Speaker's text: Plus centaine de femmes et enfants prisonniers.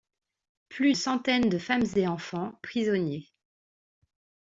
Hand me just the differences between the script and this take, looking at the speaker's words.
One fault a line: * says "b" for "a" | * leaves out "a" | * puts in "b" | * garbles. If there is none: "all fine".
all fine